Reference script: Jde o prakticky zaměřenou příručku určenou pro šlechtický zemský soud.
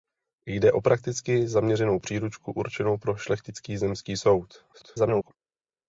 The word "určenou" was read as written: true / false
true